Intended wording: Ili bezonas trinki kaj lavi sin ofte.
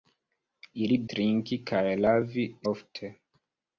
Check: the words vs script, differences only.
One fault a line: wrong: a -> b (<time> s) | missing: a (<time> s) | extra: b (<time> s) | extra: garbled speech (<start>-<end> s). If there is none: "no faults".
missing: bezonas (1.0 s)
missing: sin (2.5 s)